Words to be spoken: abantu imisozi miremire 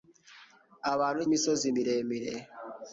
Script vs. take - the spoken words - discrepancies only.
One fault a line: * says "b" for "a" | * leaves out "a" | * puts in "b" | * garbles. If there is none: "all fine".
all fine